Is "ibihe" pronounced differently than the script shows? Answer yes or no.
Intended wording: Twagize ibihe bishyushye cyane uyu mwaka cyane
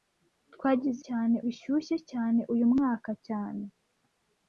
yes